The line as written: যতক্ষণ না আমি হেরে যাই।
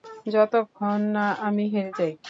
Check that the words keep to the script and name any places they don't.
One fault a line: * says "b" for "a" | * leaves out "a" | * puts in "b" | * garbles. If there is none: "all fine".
all fine